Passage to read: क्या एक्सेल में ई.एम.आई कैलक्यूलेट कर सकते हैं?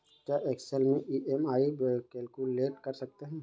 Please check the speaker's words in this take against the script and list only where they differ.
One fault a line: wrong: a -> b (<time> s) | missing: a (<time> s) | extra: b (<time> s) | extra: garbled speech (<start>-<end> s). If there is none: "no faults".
no faults